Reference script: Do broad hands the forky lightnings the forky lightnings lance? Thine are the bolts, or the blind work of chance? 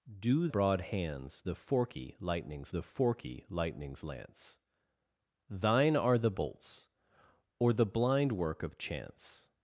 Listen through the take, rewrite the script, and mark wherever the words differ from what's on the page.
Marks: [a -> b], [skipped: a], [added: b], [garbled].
Do broad hands the forky lightnings the forky lightnings lance? Thine are the bolts, or the blind work of chance?